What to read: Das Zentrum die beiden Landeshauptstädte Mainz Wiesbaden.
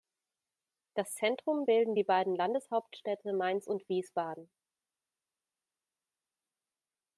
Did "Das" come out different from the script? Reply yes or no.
no